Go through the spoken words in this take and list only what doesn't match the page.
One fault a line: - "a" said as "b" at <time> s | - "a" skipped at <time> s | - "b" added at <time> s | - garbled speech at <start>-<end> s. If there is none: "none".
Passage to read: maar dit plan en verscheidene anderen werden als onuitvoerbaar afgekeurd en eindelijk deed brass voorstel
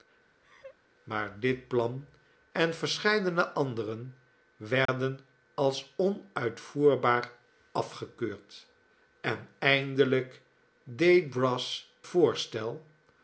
none